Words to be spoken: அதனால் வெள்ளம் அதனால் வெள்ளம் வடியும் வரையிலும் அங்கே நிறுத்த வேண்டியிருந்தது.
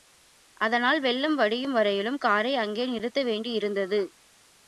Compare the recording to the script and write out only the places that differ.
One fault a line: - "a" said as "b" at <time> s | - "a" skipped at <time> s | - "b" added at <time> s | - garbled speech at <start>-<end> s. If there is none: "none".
- "அதனால் வெள்ளம்" skipped at 1.4 s
- "காரை" added at 2.2 s